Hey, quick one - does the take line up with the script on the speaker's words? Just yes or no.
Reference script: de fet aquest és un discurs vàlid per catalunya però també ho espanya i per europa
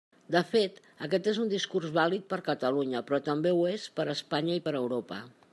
no